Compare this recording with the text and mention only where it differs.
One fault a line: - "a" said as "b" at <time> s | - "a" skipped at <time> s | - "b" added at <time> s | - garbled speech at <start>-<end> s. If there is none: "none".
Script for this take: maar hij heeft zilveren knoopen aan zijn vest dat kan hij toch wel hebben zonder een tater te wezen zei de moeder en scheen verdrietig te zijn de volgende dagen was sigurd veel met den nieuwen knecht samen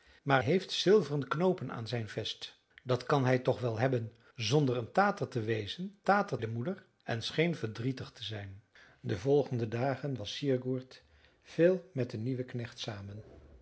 - "hij" skipped at 0.4 s
- "zei" said as "tater" at 6.0 s